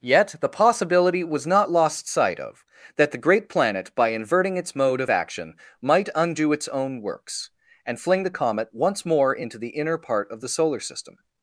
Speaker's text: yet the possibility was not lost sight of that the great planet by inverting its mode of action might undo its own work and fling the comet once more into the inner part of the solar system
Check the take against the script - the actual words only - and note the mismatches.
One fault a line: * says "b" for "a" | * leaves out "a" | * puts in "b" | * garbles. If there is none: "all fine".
* says "works" for "work"